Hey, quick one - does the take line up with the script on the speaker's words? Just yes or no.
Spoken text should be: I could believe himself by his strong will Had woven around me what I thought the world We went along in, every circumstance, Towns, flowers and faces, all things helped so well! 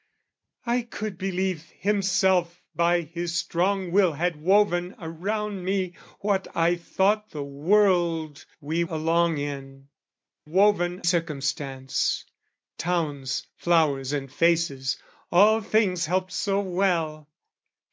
no